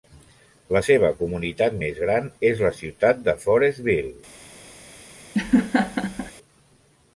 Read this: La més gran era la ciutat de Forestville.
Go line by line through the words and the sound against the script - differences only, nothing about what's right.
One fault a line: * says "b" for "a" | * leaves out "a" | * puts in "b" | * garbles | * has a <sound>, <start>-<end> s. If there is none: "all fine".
* puts in "seva comunitat"
* says "és" for "era"
* has a laugh, 5.3-6.3 s